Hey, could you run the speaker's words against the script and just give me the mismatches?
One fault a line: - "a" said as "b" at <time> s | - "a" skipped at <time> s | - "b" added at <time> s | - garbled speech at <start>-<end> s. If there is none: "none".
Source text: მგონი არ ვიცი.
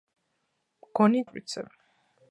none